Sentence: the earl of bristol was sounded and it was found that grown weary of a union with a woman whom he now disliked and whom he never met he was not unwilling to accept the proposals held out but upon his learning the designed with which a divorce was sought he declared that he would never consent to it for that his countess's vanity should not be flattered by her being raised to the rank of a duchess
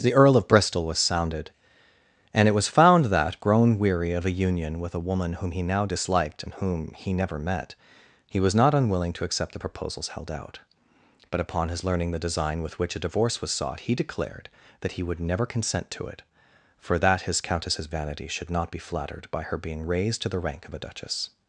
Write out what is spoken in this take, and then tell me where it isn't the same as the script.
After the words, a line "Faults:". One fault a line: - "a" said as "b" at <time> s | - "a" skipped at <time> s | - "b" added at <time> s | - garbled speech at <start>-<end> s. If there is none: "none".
the earl of bristol was sounded and it was found that grown weary of a union with a woman whom he now disliked and whom he never met he was not unwilling to accept the proposals held out but upon his learning the design with which a divorce was sought he declared that he would never consent to it for that his countess's vanity should not be flattered by her being raised to the rank of a duchess
Faults:
- "designed" said as "design" at 12.3 s